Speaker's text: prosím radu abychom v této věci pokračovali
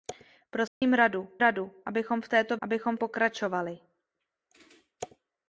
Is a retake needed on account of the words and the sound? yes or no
yes